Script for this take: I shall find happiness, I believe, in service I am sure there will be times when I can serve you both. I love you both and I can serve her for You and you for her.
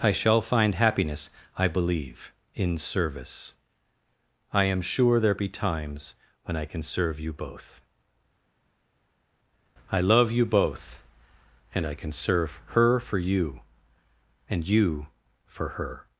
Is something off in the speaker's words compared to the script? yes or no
yes